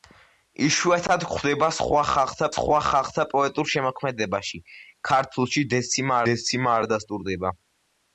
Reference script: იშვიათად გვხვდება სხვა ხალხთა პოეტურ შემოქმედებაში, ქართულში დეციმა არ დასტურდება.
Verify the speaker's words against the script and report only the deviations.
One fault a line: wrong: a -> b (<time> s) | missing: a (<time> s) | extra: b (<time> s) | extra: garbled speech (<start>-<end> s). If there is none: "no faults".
extra: სხვა ხალხთა (2.6 s)
extra: დეციმა (6.3 s)